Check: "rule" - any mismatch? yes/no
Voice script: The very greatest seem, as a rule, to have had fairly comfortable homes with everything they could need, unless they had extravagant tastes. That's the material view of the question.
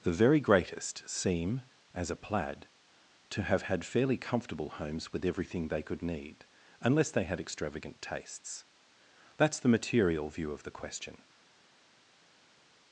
yes